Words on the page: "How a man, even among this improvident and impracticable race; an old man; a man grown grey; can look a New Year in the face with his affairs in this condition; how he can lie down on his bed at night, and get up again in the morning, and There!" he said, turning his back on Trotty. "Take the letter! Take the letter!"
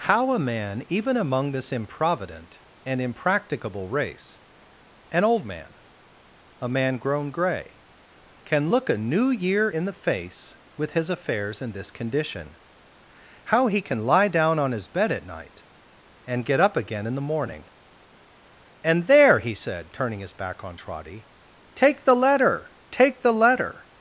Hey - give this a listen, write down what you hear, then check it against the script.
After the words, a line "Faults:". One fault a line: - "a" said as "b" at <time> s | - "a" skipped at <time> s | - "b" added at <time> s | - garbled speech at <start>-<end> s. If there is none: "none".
"How a man, even among this improvident and impracticable race; an old man; a man grown grey; can look a New Year in the face with his affairs in this condition; how he can lie down on his bed at night, and get up again in the morning, and There!" he said, turning his back on Trotty. "Take the letter! Take the letter!"
Faults:
none